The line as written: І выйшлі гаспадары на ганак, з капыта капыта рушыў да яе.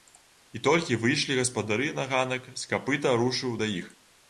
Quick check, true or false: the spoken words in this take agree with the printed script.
false